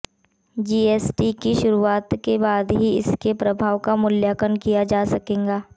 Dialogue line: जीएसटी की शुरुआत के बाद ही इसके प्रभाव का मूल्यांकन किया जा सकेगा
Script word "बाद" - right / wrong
right